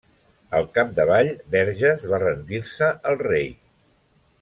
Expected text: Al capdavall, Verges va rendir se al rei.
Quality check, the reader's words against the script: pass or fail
pass